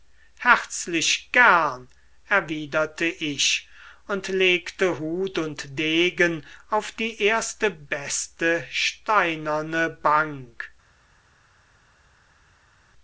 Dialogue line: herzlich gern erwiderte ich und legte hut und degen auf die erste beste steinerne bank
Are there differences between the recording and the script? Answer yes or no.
no